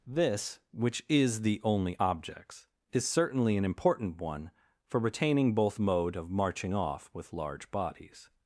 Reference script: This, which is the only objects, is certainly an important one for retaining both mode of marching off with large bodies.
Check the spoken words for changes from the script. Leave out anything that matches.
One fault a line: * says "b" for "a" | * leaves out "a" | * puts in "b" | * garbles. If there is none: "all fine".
all fine